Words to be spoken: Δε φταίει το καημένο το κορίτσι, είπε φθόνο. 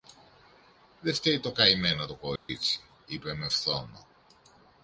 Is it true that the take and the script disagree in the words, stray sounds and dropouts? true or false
true